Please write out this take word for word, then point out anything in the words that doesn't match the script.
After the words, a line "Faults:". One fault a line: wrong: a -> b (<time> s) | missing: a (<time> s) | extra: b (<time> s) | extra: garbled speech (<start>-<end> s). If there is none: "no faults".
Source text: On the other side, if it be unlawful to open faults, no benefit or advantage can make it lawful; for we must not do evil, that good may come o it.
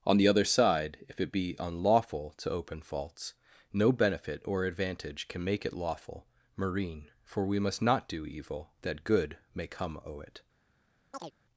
On the other side, if it be unlawful to open faults, no benefit or advantage can make it lawful; marine for we must not do evil, that good may come o it.
Faults:
extra: marine (6.6 s)